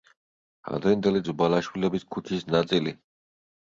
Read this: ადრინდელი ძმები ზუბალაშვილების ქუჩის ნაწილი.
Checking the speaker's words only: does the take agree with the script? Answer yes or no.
no